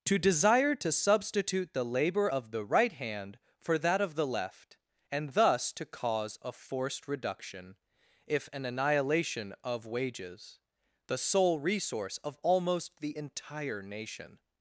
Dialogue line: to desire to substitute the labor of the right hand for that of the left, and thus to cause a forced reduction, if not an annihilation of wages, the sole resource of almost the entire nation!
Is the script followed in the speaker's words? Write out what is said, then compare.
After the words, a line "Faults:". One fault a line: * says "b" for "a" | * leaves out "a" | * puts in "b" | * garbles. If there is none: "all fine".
to desire to substitute the labor of the right hand for that of the left, and thus to cause a forced reduction, if an annihilation of wages, the sole resource of almost the entire nation!
Faults:
* leaves out "not"